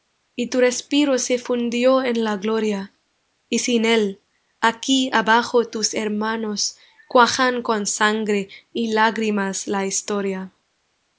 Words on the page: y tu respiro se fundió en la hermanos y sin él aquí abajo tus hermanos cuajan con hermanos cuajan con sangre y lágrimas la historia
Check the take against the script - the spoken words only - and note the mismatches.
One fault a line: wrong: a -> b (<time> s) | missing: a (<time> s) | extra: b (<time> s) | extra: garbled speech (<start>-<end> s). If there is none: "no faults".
wrong: hermanos -> gloria (2.4 s)
missing: hermanos cuajan con (7.8 s)